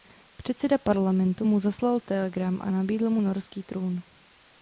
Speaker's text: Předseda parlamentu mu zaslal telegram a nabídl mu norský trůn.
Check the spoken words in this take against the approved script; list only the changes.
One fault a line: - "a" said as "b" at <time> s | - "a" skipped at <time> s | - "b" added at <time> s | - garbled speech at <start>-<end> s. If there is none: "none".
none